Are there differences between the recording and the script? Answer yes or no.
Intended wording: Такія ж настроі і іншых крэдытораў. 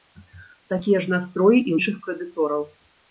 no